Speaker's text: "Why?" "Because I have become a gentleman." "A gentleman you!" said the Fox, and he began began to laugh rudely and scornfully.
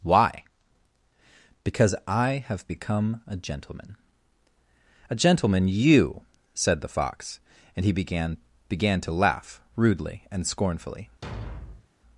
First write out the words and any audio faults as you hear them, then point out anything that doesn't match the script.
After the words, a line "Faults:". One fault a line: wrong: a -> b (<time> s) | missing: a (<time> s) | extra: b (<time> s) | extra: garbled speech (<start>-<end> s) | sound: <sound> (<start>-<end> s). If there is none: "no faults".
"Why?" "Because I have become a gentleman." "A gentleman you!" said the Fox, and he began began to laugh rudely and scornfully.
Faults:
sound: thud (11.2-11.9 s)